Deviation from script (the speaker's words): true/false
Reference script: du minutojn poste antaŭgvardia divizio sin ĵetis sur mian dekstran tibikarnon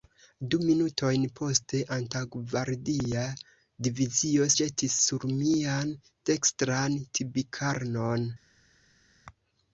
true